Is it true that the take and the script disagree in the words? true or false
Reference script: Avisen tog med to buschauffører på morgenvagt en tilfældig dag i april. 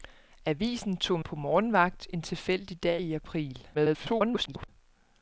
true